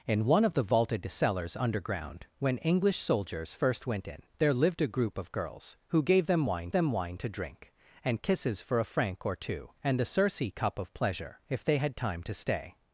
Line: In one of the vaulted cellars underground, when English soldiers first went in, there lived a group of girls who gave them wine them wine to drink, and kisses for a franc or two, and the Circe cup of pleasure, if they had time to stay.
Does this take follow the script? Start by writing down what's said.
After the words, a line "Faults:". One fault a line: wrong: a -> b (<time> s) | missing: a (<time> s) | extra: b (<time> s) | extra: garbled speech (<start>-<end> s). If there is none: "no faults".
In one of the vaulted cellars underground, when English soldiers first went in, there lived a group of girls who gave them wine them wine to drink, and kisses for a franc or two, and the Circe cup of pleasure, if they had time to stay.
Faults:
no faults